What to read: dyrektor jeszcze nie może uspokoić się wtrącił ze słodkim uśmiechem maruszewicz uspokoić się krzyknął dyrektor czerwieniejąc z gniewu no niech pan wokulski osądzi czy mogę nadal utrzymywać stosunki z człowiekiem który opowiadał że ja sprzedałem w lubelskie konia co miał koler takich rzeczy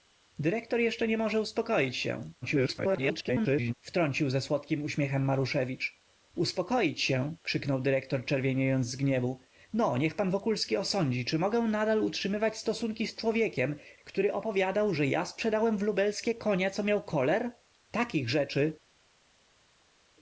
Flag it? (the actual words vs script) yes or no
yes